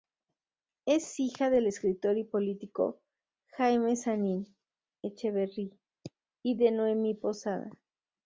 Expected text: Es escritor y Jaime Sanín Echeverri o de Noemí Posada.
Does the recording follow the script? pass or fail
fail